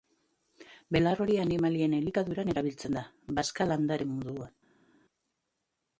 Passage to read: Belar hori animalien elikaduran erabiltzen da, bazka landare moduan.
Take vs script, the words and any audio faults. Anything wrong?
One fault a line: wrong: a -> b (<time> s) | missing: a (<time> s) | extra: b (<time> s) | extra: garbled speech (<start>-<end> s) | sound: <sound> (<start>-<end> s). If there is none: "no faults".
no faults